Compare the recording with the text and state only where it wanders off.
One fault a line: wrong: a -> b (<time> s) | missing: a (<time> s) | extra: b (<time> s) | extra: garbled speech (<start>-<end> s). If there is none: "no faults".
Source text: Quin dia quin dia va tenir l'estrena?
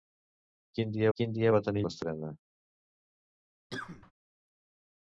no faults